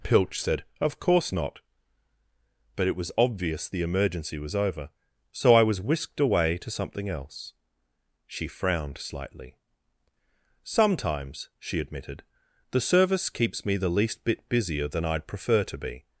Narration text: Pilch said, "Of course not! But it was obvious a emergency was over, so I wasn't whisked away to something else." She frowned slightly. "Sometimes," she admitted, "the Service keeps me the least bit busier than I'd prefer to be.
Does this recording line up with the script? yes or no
no